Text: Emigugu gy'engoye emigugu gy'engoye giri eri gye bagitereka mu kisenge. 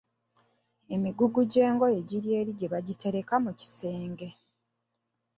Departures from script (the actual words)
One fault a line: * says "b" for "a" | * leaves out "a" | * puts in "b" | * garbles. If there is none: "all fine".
* leaves out "emigugu gy'engoye"